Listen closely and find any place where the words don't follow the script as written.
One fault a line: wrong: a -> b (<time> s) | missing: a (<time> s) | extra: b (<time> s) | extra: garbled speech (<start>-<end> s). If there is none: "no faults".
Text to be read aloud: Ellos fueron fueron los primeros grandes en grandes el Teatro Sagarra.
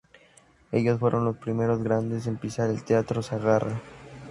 missing: fueron (1.2 s)
wrong: grandes -> pisar (2.4 s)